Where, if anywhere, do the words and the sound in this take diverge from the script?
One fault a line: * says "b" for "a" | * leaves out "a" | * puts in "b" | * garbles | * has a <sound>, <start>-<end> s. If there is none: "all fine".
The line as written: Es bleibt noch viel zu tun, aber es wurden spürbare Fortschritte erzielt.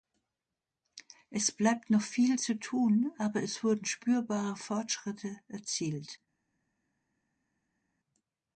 all fine